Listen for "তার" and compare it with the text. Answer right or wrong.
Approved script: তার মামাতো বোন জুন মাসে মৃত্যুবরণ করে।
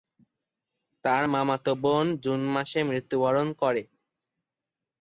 right